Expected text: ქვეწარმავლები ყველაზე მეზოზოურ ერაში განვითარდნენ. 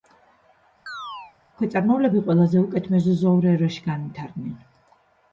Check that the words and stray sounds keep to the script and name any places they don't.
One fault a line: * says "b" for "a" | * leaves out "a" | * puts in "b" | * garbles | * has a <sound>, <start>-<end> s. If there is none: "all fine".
* has a chirp, 0.9-1.4 s
* puts in "უკეთ"